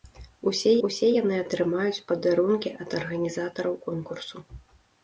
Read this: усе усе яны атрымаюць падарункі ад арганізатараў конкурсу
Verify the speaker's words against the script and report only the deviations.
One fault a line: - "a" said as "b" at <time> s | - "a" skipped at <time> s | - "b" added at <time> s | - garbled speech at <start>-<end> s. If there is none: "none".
none